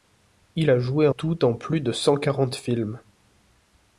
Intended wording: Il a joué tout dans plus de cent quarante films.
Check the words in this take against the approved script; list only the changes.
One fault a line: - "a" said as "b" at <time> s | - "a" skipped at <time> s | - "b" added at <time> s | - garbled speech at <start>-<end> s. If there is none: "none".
none